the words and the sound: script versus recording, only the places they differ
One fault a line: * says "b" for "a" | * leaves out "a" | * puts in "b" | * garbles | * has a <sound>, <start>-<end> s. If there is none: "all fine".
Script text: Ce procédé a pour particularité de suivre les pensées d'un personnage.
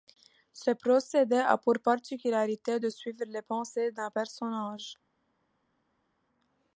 all fine